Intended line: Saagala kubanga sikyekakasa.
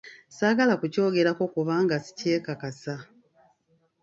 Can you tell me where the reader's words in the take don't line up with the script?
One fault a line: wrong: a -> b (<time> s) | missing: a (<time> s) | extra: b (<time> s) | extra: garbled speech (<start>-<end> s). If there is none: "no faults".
extra: kukyogerako (0.8 s)